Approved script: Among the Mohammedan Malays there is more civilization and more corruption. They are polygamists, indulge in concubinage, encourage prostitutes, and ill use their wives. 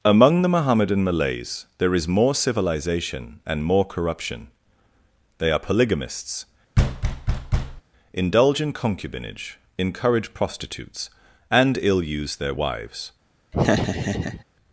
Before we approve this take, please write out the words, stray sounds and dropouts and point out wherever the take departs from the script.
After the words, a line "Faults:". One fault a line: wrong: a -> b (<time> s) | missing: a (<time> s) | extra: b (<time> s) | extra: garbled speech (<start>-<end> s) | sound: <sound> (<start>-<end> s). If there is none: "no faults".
Among the Mohammedan Malays there is more civilization and more corruption. They are polygamists, indulge in concubinage, encourage prostitutes, and ill use their wives.
Faults:
sound: thud (6.8-7.8 s)
sound: laugh (13.5-14.4 s)